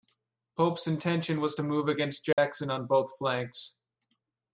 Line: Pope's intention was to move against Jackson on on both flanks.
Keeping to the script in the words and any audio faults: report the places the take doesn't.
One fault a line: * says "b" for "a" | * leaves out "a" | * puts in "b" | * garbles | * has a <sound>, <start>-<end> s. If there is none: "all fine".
* has a dropout, 2.3-2.4 s
* leaves out "on"